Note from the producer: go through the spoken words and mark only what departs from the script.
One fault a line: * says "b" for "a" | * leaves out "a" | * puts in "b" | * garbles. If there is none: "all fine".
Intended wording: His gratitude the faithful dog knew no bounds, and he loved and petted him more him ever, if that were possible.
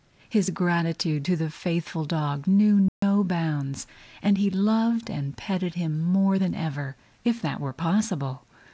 * puts in "to"
* says "than" for "him"